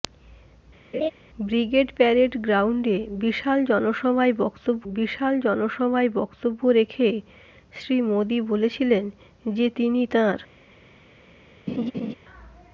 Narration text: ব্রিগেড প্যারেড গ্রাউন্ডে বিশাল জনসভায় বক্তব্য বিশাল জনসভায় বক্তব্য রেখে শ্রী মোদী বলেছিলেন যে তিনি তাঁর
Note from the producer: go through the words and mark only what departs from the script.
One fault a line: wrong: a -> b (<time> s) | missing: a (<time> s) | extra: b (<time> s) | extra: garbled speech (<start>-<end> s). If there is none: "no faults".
no faults